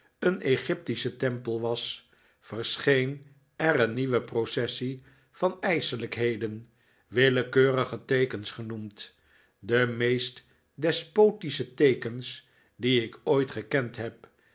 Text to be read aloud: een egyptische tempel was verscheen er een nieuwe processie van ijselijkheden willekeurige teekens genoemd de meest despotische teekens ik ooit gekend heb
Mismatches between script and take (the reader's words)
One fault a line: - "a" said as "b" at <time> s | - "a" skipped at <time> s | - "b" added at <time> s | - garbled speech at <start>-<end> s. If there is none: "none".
- "die" added at 12.8 s